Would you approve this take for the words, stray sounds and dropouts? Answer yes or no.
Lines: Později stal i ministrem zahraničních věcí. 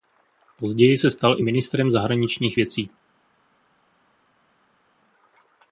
no